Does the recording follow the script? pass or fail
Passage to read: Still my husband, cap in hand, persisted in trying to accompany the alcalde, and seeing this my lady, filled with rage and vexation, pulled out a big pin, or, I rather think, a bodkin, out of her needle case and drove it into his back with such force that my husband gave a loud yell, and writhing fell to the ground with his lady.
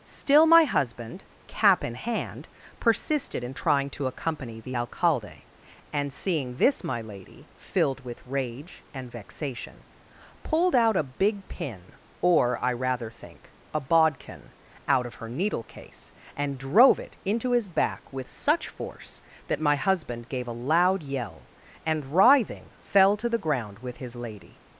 pass